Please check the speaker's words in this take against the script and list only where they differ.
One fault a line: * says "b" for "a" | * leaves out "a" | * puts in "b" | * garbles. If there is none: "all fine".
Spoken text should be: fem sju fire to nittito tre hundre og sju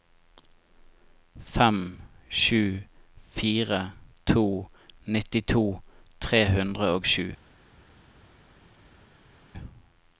all fine